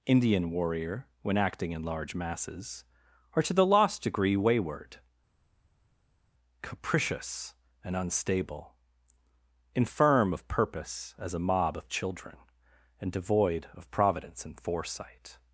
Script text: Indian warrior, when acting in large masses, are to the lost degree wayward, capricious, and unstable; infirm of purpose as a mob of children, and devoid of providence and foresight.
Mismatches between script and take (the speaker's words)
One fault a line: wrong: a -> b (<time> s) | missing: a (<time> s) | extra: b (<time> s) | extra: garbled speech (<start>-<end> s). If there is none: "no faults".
no faults